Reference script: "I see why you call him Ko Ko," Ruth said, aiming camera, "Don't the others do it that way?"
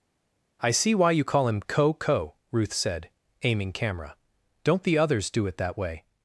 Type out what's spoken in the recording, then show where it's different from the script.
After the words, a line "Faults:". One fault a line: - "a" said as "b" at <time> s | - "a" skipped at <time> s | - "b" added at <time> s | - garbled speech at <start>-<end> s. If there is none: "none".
"I see why you call him Ko Ko," Ruth said, aiming camera, "Don't the others do it that way?"
Faults:
none